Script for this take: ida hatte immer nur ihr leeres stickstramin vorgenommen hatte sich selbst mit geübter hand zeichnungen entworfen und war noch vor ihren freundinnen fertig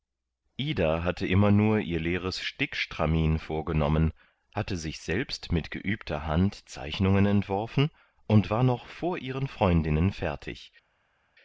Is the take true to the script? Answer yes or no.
yes